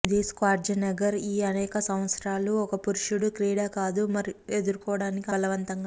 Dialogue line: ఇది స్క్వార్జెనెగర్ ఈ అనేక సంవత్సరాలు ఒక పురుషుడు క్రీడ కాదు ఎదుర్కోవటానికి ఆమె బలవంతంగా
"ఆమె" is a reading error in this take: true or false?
true